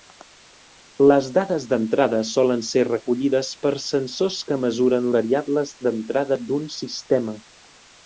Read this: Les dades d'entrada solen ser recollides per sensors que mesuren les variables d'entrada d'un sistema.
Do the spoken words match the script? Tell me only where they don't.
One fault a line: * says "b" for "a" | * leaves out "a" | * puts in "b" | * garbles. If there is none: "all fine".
* leaves out "les"